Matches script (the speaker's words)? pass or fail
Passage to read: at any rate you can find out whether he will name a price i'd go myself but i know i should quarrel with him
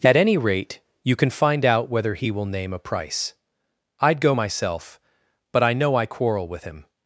fail